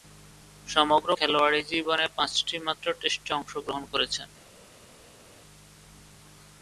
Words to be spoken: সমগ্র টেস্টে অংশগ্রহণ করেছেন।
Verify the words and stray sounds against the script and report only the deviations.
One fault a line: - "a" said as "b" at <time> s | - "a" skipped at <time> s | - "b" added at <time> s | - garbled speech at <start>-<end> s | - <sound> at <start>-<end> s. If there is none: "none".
- "খেলোয়াড়ী জীবনে পাঁচটিমাত্র" added at 1.1 s